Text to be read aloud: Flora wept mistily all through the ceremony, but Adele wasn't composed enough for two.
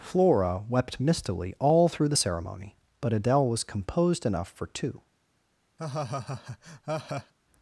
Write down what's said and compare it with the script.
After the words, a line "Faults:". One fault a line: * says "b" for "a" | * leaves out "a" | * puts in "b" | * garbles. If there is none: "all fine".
Flora wept mistily all through the ceremony, but Adele was composed enough for two.
Faults:
* says "was" for "wasn't"